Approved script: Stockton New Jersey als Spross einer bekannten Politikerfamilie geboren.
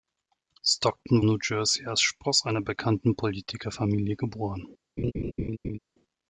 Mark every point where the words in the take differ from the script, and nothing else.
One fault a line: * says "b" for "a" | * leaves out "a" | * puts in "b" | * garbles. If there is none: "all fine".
all fine